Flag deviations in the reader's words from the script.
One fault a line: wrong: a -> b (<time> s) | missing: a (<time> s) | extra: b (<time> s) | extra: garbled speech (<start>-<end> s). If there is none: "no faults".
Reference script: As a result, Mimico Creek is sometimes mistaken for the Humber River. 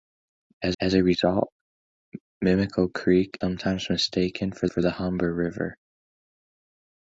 extra: as (0.8 s)
missing: is (3.4 s)
extra: for (4.6 s)